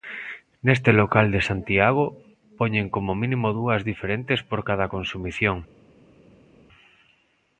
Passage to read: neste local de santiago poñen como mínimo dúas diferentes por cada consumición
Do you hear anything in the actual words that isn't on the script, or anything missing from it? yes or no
no